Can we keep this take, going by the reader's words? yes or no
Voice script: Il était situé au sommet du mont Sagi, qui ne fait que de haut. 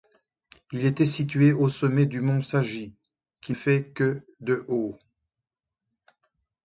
no